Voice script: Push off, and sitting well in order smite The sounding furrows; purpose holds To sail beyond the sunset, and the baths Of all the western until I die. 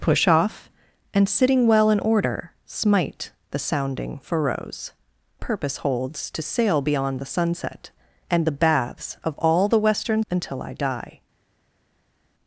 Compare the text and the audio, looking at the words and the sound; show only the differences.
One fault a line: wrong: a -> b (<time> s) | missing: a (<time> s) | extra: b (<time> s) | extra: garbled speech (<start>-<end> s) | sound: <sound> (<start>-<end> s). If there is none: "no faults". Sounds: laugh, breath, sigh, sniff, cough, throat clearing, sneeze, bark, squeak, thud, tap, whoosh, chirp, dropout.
no faults